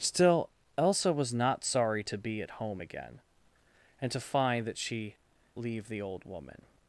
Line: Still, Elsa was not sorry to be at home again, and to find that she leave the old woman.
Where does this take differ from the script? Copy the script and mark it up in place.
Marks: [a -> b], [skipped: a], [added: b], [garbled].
Still, Elsa was not sorry to be at home again, and to find that she leave the old woman.